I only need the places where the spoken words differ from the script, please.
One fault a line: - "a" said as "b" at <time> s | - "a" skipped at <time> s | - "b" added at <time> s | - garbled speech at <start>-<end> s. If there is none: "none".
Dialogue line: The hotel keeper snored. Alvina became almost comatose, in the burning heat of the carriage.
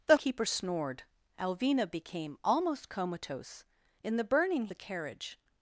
- "hotel" skipped at 0.2 s
- "heat of" skipped at 4.7 s